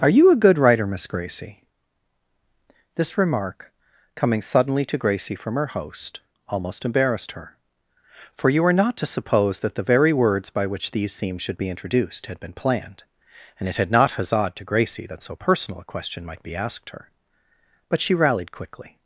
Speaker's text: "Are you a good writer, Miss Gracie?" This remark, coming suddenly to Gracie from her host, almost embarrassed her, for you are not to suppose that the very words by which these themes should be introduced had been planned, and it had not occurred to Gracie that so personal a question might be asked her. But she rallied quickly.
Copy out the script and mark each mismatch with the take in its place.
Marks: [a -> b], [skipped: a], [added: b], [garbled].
"Are you a good writer, Miss Gracie?" This remark, coming suddenly to Gracie from her host, almost embarrassed her, for you are not to suppose that the very words by which these themes should be introduced had been planned, and it had not [occurred -> huzzaed] to Gracie that so personal a question might be asked her. But she rallied quickly.